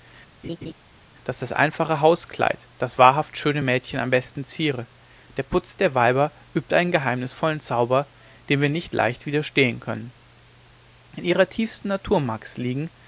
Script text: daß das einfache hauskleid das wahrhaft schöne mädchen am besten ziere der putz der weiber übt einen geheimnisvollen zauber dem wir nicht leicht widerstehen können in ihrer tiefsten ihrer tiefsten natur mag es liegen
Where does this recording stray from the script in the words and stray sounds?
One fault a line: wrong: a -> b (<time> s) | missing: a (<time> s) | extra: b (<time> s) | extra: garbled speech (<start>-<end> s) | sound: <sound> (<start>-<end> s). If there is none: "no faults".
sound: laugh (0.4-0.7 s)
missing: ihrer tiefsten (11.9 s)